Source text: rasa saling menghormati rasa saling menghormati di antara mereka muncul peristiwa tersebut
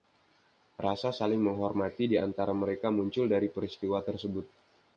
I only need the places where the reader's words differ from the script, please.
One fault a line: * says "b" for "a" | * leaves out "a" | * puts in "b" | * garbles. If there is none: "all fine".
* leaves out "rasa saling menghormati"
* puts in "dari"